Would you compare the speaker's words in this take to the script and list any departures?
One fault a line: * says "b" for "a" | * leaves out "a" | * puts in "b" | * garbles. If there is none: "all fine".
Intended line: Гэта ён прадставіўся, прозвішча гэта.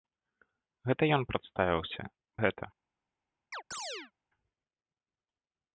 * leaves out "прозвішча"